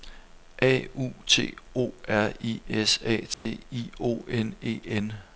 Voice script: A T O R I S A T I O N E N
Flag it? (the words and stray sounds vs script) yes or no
yes